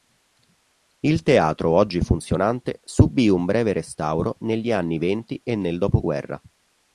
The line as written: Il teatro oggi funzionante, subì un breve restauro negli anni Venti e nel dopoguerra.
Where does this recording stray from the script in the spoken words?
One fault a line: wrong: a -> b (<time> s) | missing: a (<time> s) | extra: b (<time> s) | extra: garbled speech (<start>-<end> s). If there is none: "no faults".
no faults